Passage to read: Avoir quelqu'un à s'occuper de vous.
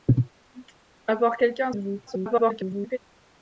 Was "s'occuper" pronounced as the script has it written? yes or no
no